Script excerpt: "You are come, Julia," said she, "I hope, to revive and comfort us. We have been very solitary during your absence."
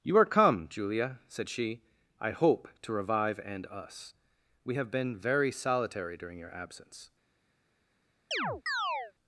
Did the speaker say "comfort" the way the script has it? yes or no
no